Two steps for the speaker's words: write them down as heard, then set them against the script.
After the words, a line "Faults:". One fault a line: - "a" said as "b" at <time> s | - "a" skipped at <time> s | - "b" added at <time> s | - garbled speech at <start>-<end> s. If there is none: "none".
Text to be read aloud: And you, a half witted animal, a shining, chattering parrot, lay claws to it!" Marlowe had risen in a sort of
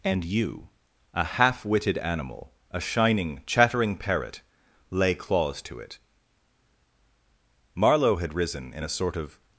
And you, a half witted animal, a shining, chattering parrot, lay claws to it!" Marlowe had risen in a sort of
Faults:
none